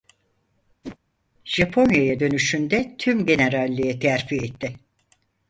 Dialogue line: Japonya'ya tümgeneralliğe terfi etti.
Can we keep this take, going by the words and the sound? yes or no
no